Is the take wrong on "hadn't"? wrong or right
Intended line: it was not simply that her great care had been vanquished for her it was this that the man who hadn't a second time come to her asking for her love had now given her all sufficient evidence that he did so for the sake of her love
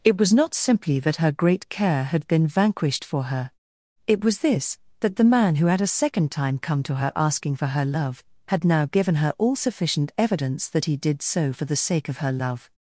wrong